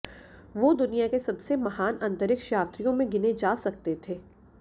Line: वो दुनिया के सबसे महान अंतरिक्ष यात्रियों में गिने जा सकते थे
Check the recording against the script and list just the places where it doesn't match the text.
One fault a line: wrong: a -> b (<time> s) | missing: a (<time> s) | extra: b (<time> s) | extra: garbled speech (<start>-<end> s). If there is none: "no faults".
no faults